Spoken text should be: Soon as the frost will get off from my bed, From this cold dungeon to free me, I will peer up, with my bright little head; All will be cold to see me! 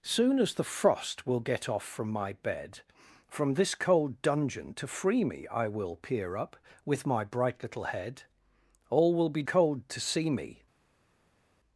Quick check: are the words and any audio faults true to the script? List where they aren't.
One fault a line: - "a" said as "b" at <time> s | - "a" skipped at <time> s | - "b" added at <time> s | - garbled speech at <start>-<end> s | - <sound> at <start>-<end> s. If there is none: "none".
none